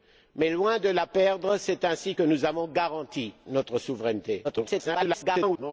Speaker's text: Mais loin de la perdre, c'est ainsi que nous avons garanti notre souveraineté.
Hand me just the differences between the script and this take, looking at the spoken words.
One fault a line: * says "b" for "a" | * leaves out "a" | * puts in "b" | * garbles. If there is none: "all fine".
* garbles